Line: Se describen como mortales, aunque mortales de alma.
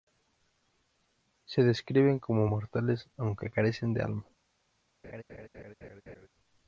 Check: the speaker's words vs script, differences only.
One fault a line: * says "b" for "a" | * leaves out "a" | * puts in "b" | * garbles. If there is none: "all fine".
* says "carecen" for "mortales"